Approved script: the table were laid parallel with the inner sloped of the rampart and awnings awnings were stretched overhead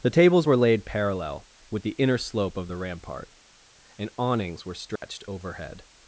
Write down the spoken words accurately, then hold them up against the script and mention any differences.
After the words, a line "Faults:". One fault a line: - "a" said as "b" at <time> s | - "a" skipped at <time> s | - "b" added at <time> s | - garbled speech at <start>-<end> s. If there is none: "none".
the tables were laid parallel with the inner slope of the rampart and awnings were stretched overhead
Faults:
- "table" said as "tables" at 0.1 s
- "sloped" said as "slope" at 2.2 s
- "awnings" skipped at 4.7 s